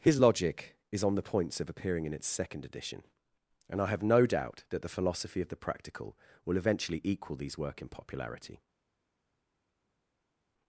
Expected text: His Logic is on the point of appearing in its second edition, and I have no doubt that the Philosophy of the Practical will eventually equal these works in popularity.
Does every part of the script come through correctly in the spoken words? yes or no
no